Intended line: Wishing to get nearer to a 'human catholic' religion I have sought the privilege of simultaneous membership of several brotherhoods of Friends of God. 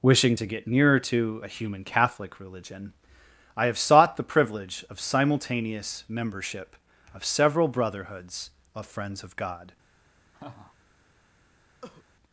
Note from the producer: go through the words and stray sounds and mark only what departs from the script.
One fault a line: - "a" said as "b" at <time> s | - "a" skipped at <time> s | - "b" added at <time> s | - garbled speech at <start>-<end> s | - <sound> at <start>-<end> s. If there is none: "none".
- laugh at 10.3-10.8 s
- cough at 11.8-12.0 s